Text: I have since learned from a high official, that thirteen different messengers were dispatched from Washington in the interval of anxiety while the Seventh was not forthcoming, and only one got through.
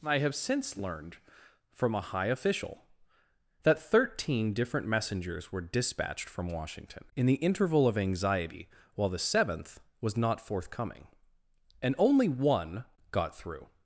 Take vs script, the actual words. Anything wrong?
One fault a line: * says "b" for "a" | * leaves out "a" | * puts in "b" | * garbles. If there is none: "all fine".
all fine